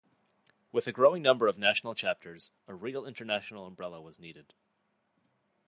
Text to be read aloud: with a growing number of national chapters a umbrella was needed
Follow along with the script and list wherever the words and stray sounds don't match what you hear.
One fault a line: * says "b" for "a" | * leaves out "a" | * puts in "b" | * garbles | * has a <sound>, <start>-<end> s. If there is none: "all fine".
* puts in "real international"